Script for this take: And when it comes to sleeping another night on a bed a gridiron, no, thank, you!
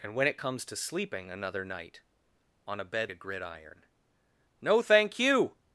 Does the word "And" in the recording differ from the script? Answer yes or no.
no